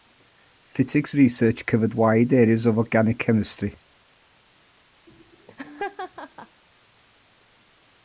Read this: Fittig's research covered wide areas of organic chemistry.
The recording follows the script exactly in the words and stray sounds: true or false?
false